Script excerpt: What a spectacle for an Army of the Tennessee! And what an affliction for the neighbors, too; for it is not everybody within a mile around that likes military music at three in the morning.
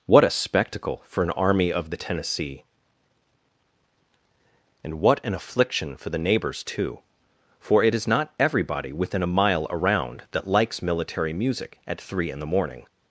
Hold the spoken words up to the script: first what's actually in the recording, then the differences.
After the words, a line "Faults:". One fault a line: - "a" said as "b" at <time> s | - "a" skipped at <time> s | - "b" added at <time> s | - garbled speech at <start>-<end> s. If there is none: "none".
What a spectacle for an Army of the Tennessee! And what an affliction for the neighbors, too; for it is not everybody within a mile around that likes military music at three in the morning.
Faults:
none